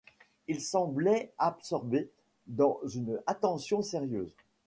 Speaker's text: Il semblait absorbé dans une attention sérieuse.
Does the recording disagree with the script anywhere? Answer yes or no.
no